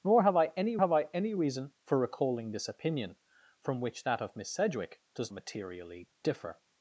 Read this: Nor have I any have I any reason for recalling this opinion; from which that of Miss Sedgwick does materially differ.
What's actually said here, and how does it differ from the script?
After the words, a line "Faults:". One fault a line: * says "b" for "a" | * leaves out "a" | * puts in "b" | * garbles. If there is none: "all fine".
Nor have I any have I any reason for recalling this opinion; from which that of Miss Sedgwick does materially differ.
Faults:
all fine